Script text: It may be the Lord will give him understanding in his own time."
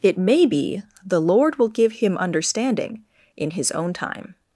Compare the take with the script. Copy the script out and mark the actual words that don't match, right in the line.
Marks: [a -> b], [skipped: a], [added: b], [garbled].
It may be the Lord will give him understanding in his own time."